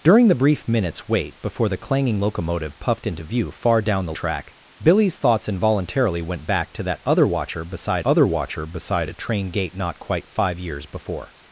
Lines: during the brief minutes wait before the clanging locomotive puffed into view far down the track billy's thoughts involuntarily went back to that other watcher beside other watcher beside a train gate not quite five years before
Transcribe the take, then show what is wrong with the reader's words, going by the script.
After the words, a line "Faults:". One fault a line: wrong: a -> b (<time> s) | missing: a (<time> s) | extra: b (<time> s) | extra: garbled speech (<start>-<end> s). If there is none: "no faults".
during the brief minutes wait before the clanging locomotive puffed into view far down the track billy's thoughts involuntarily went back to that other watcher beside other watcher beside a train gate not quite five years before
Faults:
no faults